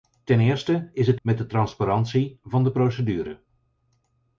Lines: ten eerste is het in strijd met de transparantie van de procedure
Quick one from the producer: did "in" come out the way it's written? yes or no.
no